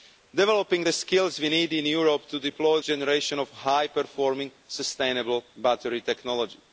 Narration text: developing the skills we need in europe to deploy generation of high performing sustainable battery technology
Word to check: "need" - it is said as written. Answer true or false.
true